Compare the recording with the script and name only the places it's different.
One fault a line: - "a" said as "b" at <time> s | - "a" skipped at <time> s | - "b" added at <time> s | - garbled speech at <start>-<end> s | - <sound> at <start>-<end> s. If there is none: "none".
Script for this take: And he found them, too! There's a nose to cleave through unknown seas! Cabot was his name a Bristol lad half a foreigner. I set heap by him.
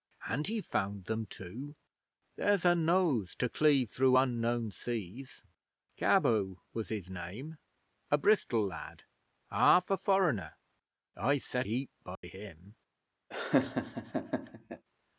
- dropout at 12.1-12.2 s
- laugh at 13.3-14.8 s